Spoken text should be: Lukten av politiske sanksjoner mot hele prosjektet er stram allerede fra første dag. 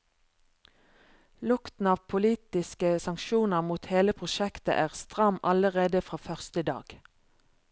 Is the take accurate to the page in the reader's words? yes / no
yes